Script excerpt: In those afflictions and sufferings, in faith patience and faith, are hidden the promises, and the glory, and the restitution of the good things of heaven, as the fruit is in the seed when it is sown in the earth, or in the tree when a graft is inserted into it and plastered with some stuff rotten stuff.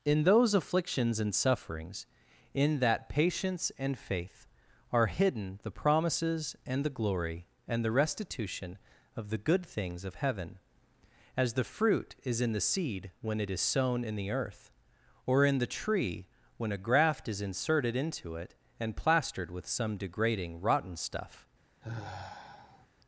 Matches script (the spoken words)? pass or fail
fail